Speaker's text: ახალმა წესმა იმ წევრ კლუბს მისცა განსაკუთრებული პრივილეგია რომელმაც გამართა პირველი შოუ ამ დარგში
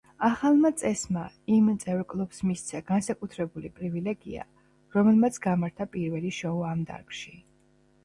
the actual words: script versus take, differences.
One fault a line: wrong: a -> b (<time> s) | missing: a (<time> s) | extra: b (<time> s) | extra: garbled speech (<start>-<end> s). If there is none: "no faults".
no faults